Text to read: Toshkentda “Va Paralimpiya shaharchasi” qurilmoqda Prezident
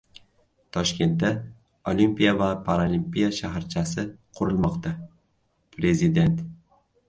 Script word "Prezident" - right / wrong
right